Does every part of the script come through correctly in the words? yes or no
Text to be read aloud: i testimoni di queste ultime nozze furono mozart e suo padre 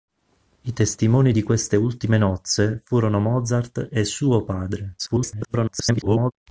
no